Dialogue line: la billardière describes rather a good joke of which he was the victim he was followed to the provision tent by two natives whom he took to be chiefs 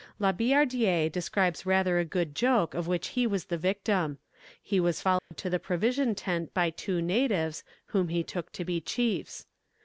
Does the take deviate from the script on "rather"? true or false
false